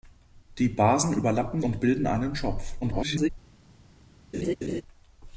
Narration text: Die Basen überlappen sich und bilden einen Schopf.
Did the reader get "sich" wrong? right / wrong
wrong